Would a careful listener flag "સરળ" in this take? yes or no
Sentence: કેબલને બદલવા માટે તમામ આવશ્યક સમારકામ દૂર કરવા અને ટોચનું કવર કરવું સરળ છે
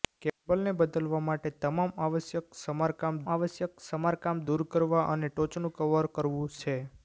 yes